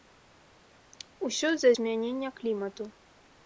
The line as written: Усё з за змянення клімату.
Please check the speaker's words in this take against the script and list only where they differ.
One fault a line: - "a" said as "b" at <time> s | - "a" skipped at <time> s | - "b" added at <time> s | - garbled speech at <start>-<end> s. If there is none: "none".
none